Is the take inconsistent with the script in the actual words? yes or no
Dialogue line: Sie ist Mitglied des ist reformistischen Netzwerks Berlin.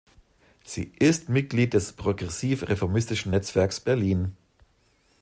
yes